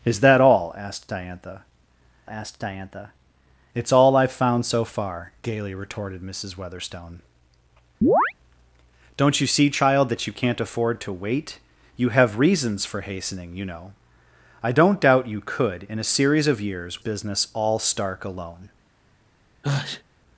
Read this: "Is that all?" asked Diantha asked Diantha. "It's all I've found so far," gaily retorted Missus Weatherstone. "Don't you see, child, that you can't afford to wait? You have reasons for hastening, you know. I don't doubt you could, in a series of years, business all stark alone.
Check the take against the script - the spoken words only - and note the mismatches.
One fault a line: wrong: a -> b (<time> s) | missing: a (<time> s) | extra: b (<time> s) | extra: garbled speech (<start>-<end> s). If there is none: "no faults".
no faults